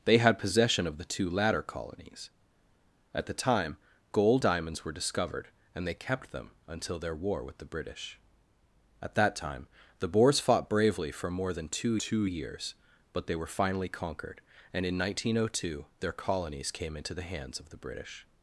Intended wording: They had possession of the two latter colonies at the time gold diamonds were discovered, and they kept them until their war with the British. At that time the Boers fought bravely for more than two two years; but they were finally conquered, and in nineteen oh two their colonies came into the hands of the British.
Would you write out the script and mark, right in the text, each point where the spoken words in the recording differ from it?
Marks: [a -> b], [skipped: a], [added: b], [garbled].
They had possession of the two latter colonies at the time gold diamonds were discovered, and they kept them until their war with the British. At that time the Boers fought bravely for more than two two years; but they were finally conquered, and in nineteen oh two their colonies came into the hands of the British.